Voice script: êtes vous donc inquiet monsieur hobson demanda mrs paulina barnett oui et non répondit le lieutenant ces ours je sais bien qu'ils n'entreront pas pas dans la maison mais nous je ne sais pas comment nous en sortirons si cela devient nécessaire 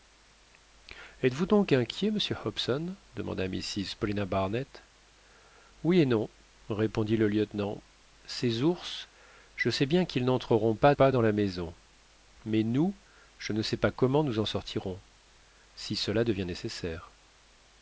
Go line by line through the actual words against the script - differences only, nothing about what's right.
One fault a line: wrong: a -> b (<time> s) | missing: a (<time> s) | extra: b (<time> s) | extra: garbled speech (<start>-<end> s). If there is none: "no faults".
no faults